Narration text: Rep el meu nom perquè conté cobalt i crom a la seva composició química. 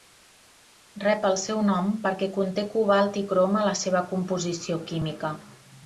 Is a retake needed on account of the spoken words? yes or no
yes